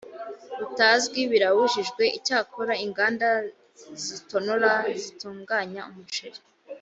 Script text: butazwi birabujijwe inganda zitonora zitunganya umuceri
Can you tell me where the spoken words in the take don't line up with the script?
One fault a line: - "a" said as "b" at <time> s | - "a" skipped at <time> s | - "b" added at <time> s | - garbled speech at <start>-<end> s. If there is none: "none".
- "icyakora" added at 2.2 s